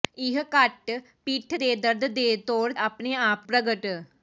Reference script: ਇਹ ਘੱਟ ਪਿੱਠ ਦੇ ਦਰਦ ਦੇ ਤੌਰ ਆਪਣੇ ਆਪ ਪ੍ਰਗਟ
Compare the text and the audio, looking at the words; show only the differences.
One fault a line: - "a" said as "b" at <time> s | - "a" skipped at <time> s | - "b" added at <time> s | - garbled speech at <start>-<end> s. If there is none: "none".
none